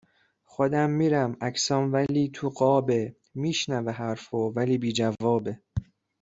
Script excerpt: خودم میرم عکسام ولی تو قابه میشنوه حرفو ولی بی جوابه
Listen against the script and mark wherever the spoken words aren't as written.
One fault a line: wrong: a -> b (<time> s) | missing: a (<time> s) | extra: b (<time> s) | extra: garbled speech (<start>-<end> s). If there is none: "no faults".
no faults